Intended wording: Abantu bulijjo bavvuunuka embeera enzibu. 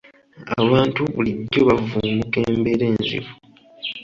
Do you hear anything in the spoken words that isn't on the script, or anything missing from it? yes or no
no